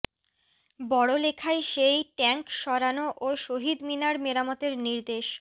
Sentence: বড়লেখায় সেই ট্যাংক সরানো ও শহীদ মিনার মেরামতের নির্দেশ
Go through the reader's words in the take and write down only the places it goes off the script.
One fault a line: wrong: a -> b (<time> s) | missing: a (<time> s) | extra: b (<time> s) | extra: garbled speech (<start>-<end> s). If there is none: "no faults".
no faults